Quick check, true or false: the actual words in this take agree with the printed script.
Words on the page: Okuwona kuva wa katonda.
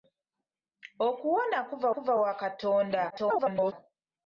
false